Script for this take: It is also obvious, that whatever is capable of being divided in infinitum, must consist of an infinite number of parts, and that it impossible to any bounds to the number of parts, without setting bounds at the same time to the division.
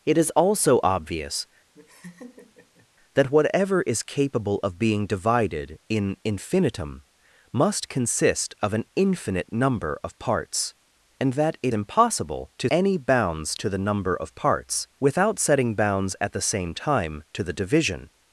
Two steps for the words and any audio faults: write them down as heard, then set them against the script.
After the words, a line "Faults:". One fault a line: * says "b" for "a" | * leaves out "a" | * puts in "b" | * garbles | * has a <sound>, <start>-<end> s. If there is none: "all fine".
It is also obvious, that whatever is capable of being divided in infinitum, must consist of an infinite number of parts, and that it impossible to any bounds to the number of parts, without setting bounds at the same time to the division.
Faults:
* has a laugh, 1.7-2.9 s